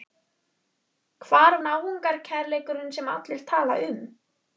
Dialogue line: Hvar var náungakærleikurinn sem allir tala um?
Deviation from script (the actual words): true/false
true